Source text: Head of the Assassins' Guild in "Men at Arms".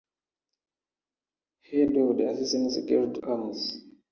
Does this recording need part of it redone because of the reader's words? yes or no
yes